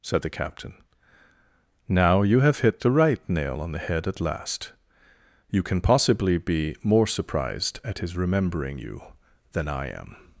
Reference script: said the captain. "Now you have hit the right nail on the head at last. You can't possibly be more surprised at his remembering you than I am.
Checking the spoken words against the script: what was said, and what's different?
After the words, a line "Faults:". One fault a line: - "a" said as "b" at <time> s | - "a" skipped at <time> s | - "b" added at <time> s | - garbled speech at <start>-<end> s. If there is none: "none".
said the captain. "Now you have hit the right nail on the head at last. You can possibly be more surprised at his remembering you than I am.
Faults:
- "can't" said as "can" at 5.6 s